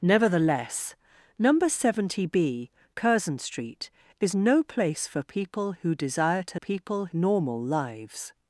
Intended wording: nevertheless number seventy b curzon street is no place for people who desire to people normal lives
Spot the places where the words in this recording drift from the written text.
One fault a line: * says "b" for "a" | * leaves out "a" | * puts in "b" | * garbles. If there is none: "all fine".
all fine